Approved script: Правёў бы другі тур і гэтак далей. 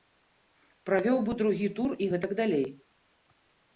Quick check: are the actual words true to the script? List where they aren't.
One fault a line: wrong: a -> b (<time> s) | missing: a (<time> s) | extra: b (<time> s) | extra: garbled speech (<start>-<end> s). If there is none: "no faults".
no faults